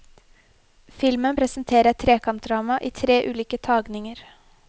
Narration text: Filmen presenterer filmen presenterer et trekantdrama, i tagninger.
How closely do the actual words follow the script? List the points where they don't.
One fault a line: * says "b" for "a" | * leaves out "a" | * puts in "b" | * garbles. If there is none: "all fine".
* leaves out "filmen presenterer"
* puts in "tre ulike"